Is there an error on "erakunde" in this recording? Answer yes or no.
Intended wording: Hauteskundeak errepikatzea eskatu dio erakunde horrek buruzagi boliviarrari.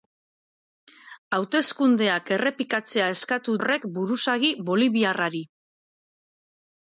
yes